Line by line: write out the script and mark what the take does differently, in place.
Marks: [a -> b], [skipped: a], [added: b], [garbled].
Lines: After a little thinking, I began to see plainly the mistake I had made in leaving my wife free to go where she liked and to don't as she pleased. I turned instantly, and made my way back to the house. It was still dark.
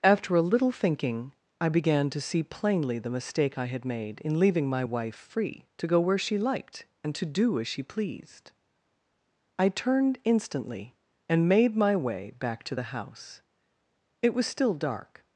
After a little thinking, I began to see plainly the mistake I had made in leaving my wife free to go where she liked and to [don't -> do] as she pleased. I turned instantly, and made my way back to the house. It was still dark.